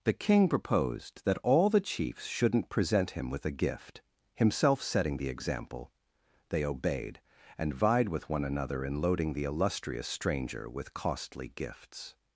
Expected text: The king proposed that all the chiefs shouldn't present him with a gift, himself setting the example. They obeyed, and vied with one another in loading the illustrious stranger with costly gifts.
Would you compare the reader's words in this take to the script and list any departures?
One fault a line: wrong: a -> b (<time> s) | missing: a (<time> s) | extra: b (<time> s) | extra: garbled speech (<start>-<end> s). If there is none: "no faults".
no faults